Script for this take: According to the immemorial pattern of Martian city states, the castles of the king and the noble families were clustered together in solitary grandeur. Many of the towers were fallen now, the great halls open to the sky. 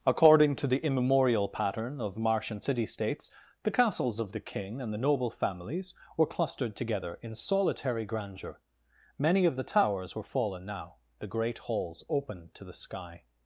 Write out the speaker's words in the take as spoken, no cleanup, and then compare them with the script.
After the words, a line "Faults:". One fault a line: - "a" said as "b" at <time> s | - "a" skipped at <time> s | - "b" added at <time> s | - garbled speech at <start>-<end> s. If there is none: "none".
According to the immemorial pattern of Martian city states, the castles of the king and the noble families were clustered together in solitary grandeur. Many of the towers were fallen now, the great halls open to the sky.
Faults:
none